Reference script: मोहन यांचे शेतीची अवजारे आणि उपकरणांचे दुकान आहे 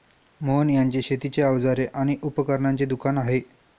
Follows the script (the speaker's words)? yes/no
yes